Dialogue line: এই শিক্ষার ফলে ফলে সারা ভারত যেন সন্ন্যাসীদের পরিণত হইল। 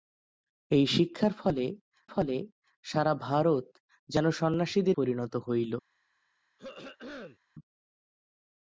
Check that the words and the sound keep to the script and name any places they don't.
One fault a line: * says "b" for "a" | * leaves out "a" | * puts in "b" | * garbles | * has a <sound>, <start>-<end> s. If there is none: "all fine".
* has a throat clearing, 6.6-7.4 s